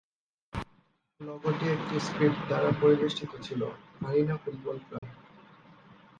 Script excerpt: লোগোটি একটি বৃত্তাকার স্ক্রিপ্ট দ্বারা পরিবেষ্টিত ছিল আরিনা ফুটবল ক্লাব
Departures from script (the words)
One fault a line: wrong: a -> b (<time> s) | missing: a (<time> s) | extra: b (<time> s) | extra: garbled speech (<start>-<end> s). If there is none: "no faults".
missing: বৃত্তাকার (1.9 s)